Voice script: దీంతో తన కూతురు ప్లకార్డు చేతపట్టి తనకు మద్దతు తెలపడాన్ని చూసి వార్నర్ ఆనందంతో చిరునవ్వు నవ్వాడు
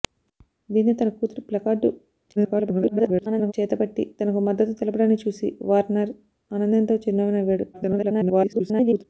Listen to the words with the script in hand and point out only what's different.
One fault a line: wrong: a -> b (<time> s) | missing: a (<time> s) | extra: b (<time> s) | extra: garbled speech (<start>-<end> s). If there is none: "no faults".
extra: garbled speech (2.4-3.5 s)
extra: garbled speech (7.7-9.0 s)